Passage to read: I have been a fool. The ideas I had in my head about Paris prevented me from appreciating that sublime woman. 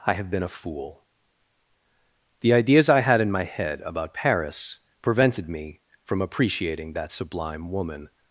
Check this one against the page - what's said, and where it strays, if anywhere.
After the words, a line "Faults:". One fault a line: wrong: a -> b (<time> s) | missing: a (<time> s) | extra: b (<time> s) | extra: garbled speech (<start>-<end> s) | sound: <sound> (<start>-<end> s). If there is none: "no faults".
I have been a fool. The ideas I had in my head about Paris prevented me from appreciating that sublime woman.
Faults:
no faults